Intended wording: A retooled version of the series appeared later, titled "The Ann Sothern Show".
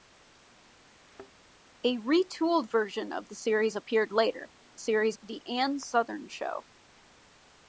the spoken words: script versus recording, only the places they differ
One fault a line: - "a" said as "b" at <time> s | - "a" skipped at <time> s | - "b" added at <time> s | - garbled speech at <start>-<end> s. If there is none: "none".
- "titled" said as "series" at 4.8 s